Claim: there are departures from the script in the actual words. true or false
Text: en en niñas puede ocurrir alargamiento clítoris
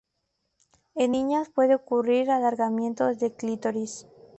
true